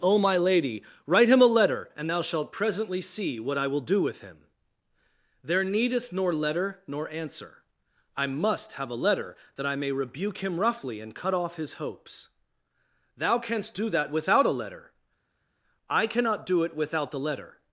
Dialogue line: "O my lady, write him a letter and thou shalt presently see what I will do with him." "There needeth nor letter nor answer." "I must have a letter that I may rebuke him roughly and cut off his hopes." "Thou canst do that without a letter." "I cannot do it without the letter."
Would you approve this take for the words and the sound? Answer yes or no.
yes